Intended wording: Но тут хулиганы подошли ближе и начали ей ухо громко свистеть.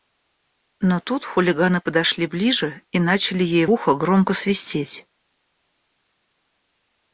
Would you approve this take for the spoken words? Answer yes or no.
yes